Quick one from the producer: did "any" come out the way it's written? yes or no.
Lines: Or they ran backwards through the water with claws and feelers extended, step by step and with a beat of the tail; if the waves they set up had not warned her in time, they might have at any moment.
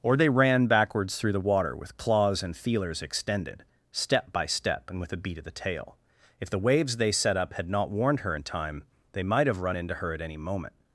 yes